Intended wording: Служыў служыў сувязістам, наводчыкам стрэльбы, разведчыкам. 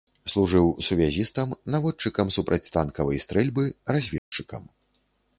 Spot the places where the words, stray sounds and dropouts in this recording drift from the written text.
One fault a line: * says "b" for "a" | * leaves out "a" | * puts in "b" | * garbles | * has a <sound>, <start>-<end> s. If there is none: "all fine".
* leaves out "служыў"
* puts in "супрацьтанкавай"
* has a dropout, 4.2-4.3 s